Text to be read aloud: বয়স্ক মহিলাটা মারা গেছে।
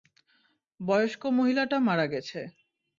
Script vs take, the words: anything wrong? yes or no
no